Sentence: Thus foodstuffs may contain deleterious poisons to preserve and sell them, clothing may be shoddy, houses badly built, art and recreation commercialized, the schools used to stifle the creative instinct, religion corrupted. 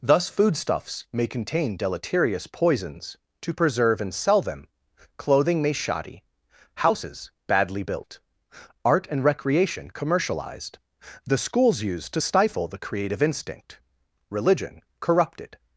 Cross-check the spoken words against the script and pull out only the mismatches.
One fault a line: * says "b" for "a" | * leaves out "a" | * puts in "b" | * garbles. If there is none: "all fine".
* leaves out "be"